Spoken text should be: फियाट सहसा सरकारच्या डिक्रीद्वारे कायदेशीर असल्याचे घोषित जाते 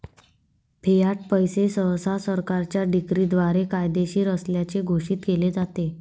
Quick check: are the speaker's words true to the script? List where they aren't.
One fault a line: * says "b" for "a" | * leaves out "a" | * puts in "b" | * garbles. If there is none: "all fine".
* puts in "पैसे"
* puts in "केले"